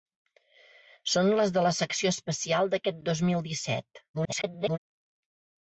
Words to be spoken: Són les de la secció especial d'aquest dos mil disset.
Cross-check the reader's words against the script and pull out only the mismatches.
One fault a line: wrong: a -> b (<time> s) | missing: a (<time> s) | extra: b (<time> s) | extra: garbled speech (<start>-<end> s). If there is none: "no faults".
extra: garbled speech (4.1-4.8 s)